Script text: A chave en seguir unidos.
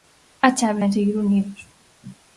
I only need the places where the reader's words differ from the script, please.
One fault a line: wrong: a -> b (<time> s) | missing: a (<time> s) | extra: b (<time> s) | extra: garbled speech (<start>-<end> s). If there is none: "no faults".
no faults